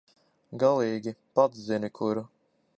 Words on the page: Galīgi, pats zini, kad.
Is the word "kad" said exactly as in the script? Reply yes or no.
no